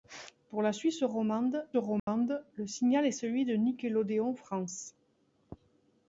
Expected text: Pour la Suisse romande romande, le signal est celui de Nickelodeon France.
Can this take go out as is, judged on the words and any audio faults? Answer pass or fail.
fail